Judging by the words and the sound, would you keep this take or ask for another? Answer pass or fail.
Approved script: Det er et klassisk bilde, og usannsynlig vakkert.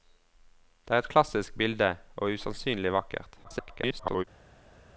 fail